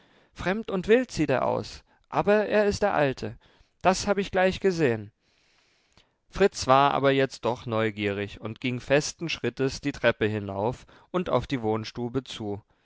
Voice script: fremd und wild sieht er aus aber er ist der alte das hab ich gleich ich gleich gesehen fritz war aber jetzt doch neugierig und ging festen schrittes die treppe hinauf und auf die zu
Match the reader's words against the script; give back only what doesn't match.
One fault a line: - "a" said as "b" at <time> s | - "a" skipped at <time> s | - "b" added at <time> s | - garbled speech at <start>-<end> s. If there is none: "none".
- "ich gleich" skipped at 4.6 s
- "wohnstube" added at 11.6 s